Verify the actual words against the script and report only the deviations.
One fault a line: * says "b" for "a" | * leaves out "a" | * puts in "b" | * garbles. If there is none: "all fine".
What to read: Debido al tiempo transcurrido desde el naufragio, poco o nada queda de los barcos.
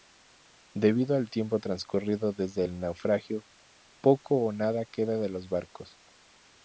all fine